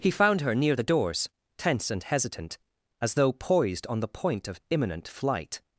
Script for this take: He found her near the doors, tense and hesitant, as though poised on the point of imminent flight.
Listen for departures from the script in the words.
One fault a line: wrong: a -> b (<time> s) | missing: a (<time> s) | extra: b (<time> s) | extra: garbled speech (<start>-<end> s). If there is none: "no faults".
no faults